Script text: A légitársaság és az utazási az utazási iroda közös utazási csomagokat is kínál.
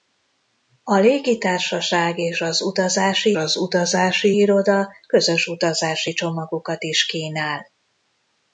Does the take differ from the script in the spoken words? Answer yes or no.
no